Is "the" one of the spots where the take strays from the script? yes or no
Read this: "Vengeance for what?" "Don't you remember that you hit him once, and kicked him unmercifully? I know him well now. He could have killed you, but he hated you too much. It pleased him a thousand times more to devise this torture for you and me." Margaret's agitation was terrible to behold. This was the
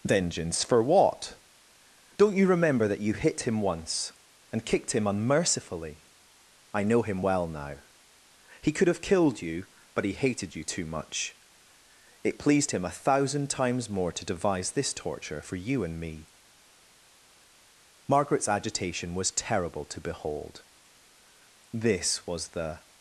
no